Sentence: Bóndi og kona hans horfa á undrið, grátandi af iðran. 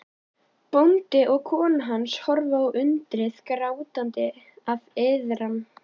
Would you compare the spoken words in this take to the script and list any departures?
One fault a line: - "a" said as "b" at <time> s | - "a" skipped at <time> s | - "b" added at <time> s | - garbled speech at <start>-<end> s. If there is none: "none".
none